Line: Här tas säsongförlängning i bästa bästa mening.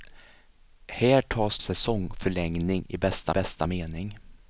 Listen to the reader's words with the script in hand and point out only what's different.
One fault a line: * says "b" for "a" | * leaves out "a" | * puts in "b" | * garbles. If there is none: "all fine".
all fine